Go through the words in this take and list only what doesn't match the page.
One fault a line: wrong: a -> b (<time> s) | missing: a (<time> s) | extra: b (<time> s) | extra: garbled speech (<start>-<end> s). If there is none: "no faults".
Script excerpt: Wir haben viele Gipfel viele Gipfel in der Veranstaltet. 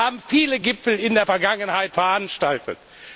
missing: viele Gipfel (1.0 s)
extra: Vergangenheit (1.2 s)